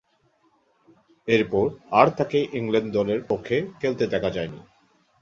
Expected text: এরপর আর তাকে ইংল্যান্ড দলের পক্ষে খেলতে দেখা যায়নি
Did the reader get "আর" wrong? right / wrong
right